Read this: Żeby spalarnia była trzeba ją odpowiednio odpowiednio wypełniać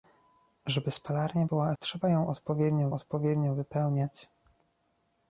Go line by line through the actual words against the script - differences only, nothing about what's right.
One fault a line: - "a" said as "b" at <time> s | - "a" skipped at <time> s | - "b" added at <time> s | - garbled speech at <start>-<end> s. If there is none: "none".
none